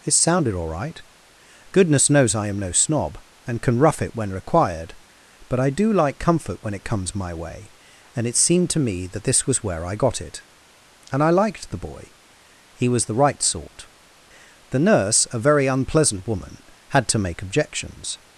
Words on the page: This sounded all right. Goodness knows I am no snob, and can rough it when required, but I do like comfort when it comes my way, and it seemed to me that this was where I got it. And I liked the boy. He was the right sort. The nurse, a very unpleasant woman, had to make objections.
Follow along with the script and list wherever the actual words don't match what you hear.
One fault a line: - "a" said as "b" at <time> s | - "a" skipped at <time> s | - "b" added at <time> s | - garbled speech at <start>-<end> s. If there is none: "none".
- "This" said as "It" at 0.0 s